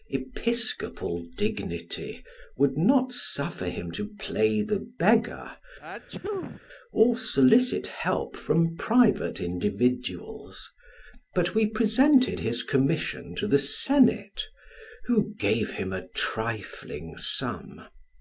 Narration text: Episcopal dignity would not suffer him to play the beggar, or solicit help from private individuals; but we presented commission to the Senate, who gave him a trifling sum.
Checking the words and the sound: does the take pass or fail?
fail